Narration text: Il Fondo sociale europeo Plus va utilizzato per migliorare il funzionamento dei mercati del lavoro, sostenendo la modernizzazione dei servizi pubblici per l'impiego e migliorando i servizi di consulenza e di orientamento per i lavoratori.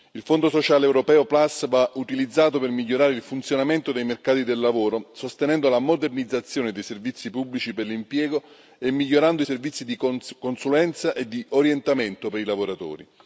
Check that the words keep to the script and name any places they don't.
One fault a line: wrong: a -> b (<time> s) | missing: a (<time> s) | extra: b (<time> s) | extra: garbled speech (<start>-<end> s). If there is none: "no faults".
no faults